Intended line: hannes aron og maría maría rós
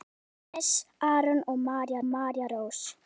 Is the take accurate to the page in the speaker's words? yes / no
yes